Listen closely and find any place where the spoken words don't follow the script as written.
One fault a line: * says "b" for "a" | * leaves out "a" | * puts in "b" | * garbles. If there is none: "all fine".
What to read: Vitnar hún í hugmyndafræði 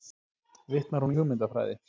all fine